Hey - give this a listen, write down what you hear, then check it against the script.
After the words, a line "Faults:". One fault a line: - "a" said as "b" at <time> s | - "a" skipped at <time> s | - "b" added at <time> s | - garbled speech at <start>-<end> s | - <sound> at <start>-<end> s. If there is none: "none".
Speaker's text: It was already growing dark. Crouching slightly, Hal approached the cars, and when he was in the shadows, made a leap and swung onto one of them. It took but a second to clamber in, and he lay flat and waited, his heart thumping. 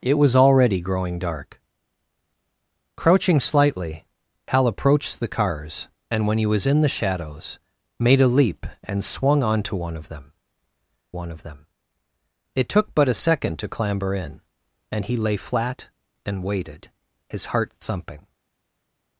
It was already growing dark. Crouching slightly, Hal approached the cars, and when he was in the shadows, made a leap and swung onto one of them one of them. It took but a second to clamber in, and he lay flat and waited, his heart thumping.
Faults:
- "one of them" added at 11.1 s